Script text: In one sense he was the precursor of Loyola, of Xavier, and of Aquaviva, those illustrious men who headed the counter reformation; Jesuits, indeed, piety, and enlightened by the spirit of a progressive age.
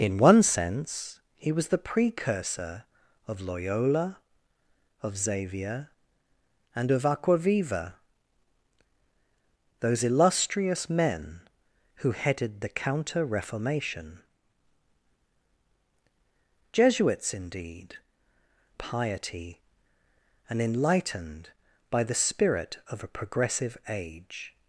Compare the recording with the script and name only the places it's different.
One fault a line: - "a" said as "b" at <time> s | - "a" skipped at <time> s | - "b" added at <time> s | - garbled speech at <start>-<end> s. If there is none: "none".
none